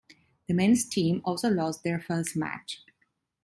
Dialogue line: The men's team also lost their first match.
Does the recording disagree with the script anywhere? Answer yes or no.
no